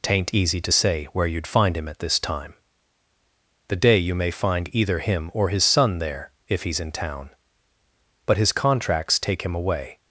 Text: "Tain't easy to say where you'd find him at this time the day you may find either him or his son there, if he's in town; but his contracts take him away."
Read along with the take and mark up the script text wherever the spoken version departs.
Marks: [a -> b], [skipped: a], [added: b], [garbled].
"Tain't easy to say where you'd find him at this time the day you may find either him or his son there, if he's in town; but his contracts take him away."